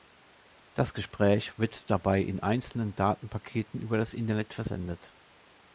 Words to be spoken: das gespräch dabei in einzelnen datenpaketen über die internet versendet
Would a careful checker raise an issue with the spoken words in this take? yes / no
yes